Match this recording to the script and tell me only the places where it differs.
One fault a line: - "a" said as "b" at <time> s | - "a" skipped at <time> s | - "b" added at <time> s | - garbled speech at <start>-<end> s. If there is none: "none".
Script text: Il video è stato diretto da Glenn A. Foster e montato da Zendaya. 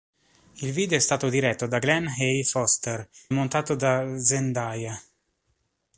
- "e" skipped at 3.1 s